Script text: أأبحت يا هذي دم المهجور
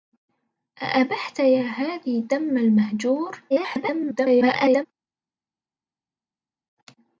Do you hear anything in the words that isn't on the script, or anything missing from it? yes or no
yes